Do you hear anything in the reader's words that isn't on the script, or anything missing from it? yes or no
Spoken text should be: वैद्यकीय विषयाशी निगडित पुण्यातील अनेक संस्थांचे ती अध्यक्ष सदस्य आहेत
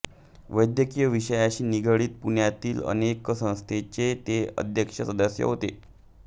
yes